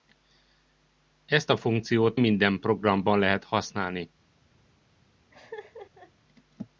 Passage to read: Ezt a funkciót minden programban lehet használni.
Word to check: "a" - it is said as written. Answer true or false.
true